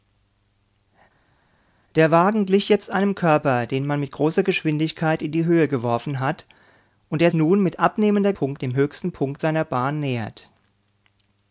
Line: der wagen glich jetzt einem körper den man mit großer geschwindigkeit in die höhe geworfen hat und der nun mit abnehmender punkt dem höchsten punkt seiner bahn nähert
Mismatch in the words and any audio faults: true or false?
false